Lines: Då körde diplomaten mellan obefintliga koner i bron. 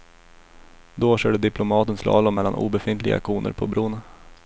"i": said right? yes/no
no